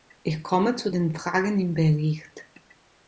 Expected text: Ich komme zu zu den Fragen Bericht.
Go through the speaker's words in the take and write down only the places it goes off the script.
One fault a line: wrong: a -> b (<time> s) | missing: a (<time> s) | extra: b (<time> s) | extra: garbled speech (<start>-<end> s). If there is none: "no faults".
missing: zu (0.9 s)
extra: im (1.6 s)